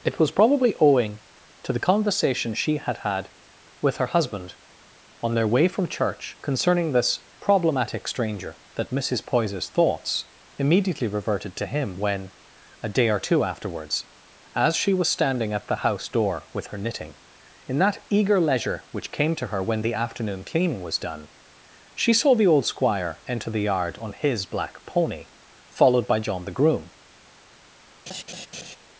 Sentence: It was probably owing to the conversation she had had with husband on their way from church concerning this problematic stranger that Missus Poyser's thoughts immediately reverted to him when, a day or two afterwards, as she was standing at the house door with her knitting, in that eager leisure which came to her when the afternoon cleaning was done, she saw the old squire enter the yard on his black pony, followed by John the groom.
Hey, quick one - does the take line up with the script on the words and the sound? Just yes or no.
no